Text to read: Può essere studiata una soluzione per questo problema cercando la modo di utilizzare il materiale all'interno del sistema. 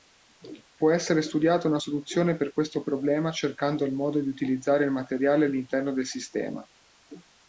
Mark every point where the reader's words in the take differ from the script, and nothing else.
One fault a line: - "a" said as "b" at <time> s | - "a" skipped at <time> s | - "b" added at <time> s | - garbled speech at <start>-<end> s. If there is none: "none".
- "la" said as "il" at 3.8 s